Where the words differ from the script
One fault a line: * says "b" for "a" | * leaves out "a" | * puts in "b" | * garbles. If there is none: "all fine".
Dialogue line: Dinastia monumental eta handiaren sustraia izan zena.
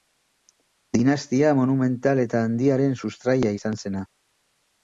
all fine